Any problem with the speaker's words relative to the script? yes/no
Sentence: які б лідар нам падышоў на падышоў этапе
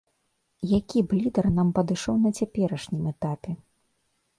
yes